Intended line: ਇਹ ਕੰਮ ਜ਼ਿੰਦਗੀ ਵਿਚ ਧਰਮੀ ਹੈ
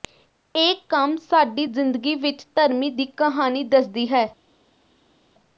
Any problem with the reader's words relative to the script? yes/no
yes